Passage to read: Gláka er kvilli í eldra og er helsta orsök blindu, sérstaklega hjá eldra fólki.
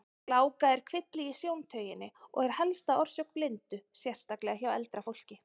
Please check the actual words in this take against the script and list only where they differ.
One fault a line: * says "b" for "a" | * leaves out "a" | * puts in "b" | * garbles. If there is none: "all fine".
* says "sjóntauginni" for "eldra"